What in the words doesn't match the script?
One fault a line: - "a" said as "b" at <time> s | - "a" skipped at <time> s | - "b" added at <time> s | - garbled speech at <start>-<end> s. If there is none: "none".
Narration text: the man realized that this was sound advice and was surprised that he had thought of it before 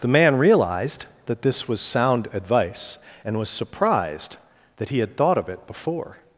none